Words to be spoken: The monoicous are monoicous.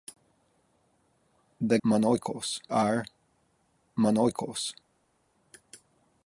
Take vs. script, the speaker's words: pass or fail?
pass